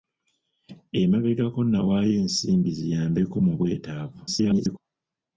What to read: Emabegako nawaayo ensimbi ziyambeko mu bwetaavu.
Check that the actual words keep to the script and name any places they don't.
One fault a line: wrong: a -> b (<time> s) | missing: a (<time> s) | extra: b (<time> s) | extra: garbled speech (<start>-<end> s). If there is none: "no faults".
extra: garbled speech (4.3-4.8 s)